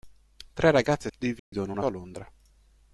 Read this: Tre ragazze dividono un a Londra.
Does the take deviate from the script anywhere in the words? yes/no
no